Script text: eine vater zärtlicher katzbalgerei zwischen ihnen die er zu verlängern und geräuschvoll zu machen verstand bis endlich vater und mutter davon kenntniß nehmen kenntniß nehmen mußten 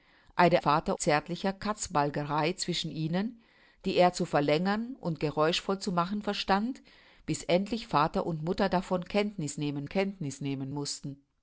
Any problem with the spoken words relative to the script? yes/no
no